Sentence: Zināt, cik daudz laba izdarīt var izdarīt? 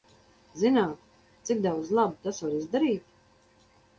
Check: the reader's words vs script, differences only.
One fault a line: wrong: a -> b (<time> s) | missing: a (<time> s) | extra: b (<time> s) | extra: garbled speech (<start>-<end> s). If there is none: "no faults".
wrong: izdarīt -> tas (2.2 s)